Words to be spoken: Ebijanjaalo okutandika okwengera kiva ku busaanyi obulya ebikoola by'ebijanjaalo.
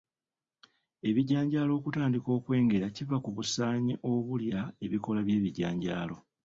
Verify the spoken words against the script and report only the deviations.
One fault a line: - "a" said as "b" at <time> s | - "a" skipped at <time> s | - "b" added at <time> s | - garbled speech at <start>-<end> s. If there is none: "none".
none